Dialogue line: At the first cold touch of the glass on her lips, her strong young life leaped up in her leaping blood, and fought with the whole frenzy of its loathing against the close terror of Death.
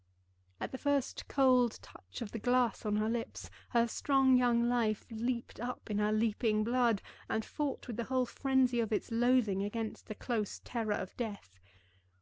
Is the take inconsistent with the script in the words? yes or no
no